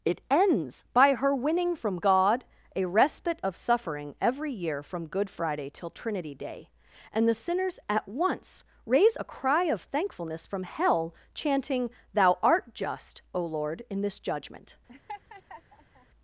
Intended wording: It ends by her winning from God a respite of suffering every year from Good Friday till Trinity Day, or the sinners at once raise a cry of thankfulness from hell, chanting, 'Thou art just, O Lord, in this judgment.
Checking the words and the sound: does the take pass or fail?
fail